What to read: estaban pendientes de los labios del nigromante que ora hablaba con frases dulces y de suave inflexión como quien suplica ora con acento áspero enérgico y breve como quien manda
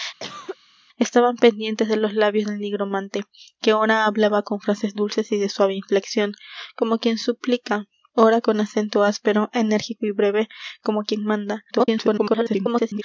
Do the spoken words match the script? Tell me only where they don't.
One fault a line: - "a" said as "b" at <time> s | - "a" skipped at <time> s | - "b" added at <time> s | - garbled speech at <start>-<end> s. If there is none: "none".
- garbled speech at 11.7-13.0 s